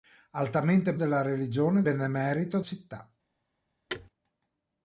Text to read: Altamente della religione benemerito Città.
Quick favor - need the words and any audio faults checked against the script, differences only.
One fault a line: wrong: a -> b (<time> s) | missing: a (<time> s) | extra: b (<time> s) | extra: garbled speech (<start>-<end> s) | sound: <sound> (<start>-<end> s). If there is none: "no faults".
sound: thud (3.9-4.1 s)